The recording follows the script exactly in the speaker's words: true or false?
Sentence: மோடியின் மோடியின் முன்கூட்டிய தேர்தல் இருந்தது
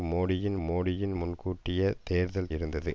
true